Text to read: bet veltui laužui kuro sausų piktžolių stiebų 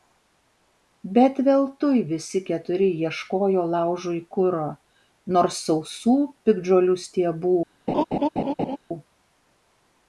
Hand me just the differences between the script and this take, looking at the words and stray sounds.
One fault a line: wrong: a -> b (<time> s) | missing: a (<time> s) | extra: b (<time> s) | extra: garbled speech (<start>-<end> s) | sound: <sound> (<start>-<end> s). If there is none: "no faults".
extra: visi keturi ieškojo (2.1 s)
extra: nors (5.4 s)
sound: laugh (7.9-8.8 s)